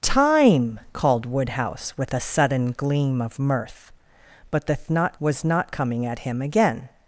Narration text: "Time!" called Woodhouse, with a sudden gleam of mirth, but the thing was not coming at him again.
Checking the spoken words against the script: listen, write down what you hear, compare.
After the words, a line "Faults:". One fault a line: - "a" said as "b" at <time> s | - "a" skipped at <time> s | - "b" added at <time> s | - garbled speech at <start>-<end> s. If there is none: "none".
"Time!" called Woodhouse, with a sudden gleam of mirth, but the not was not coming at him again.
Faults:
- "thing" said as "not" at 4.9 s